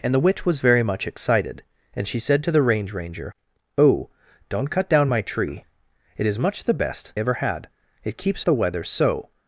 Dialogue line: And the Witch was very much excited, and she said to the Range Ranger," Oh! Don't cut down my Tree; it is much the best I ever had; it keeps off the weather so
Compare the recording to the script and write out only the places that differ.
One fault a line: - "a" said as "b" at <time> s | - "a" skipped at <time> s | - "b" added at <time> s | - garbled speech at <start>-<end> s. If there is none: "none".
- "I" skipped at 7.1 s
- "off" skipped at 8.4 s